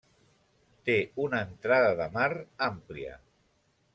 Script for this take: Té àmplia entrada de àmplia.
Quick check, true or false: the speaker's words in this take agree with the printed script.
false